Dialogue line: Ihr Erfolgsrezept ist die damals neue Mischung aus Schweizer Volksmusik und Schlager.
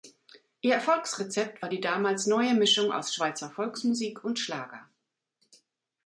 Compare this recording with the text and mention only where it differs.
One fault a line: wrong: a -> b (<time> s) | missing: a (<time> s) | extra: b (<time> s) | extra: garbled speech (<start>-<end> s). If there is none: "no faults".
wrong: ist -> war (1.6 s)